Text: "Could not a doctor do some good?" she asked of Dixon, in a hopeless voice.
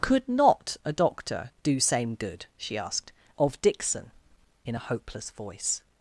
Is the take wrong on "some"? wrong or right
wrong